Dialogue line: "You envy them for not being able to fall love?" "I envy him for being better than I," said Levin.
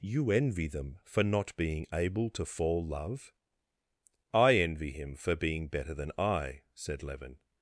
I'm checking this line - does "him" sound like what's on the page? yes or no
yes